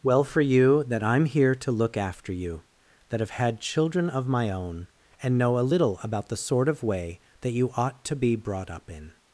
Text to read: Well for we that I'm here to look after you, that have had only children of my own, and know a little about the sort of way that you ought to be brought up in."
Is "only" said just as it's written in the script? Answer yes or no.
no